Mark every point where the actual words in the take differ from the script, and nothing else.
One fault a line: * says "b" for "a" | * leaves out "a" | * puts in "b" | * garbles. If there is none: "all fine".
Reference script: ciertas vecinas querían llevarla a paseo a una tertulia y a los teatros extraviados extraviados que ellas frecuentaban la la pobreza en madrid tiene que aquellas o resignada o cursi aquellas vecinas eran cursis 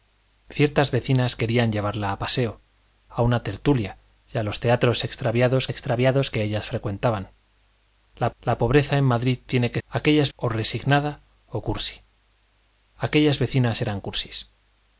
all fine